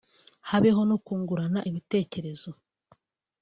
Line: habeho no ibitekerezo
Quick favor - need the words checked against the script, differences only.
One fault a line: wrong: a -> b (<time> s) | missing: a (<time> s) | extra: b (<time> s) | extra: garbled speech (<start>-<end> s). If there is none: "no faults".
extra: kungurana (1.1 s)